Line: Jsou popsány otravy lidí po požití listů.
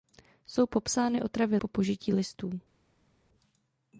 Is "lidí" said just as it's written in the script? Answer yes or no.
no